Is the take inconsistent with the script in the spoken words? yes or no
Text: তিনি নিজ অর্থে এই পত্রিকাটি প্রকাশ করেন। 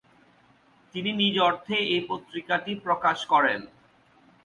no